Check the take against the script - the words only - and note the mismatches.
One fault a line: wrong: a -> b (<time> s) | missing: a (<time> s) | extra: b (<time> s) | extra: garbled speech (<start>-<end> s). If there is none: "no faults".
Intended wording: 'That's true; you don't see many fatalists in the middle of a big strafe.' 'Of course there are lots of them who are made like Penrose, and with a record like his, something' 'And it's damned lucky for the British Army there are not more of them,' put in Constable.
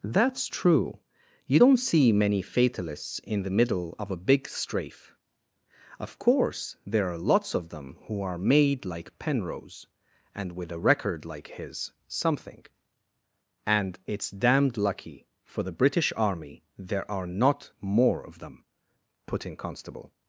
no faults